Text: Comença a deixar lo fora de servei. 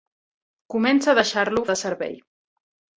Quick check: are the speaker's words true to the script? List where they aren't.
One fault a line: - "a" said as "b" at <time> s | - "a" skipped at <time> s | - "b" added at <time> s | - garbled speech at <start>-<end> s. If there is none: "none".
- "fora" skipped at 1.6 s